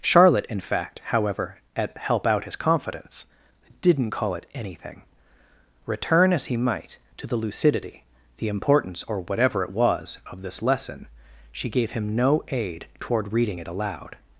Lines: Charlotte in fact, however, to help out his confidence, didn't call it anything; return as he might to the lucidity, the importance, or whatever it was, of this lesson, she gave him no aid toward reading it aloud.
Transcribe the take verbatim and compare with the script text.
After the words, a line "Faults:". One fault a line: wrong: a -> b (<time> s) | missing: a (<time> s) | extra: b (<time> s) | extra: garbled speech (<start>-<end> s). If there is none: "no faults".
Charlotte in fact, however, at help out his confidence, didn't call it anything; return as he might to the lucidity, the importance, or whatever it was, of this lesson, she gave him no aid toward reading it aloud.
Faults:
wrong: to -> at (1.8 s)